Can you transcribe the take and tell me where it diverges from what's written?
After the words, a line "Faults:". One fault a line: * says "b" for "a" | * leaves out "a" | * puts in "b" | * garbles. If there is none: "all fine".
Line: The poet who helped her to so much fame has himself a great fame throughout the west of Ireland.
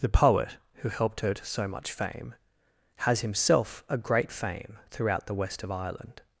The poet who helped her to so much fame has himself a great fame throughout the west of Ireland.
Faults:
all fine